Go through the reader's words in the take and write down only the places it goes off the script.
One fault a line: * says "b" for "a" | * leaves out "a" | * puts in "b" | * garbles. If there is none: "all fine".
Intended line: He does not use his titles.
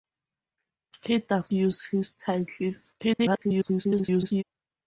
* leaves out "not"
* garbles